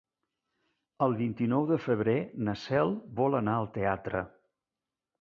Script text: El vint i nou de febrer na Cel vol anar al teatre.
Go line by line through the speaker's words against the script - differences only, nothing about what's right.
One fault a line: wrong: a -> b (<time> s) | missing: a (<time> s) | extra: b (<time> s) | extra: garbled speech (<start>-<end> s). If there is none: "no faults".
no faults